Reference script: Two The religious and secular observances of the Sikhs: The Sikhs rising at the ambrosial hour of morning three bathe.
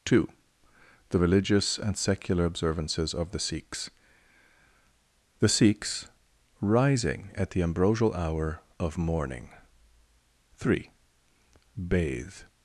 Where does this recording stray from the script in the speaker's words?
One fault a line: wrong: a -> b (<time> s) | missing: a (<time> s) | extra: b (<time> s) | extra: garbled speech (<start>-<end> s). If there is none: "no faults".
no faults